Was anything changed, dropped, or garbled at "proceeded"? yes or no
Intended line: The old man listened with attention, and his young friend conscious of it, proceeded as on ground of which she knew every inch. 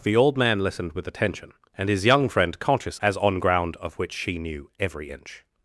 yes